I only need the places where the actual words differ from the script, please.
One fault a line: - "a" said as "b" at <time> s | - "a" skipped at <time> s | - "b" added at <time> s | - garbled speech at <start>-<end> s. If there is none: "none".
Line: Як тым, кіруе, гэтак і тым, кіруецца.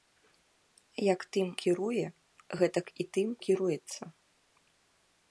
none